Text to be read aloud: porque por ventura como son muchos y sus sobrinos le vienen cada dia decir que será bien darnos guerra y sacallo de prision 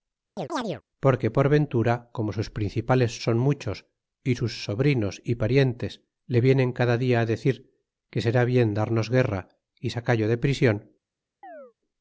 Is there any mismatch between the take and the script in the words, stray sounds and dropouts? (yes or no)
yes